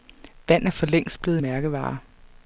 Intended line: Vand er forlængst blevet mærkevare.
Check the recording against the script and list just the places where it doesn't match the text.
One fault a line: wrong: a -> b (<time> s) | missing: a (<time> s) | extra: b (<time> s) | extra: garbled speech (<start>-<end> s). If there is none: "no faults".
no faults